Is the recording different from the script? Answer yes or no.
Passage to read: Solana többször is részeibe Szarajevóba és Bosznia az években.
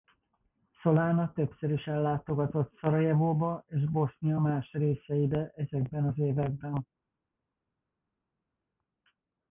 yes